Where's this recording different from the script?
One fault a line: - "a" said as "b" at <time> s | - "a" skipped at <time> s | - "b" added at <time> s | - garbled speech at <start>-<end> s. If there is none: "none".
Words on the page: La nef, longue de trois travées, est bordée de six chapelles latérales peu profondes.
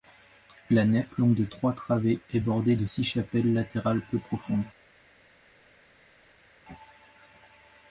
none